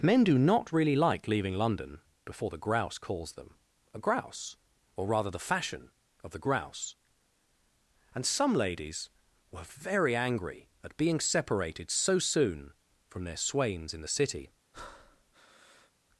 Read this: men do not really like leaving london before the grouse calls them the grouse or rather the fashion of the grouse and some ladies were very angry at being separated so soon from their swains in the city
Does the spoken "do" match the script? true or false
true